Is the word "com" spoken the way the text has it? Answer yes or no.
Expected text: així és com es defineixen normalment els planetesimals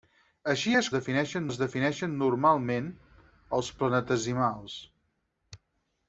no